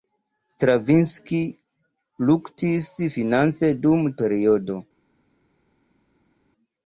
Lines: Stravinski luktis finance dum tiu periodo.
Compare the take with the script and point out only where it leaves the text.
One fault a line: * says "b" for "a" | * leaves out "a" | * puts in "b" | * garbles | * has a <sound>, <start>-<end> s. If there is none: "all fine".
* leaves out "tiu"